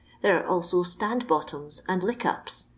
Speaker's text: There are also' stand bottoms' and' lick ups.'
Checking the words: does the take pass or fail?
pass